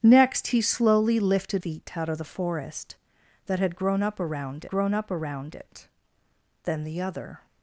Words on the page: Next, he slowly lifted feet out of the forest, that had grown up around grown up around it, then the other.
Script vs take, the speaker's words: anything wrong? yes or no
no